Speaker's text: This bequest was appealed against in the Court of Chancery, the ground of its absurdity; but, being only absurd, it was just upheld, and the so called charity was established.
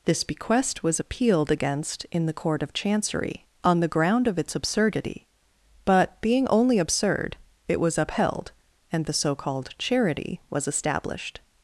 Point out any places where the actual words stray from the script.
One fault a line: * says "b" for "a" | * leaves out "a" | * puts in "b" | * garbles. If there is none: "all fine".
* puts in "on"
* leaves out "just"